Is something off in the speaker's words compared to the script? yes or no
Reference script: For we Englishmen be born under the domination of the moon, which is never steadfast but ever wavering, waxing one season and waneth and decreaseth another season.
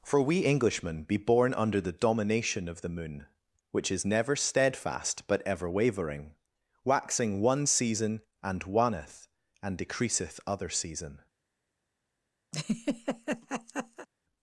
yes